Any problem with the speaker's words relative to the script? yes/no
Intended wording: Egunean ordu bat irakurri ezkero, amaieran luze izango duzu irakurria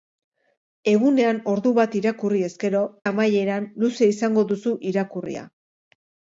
no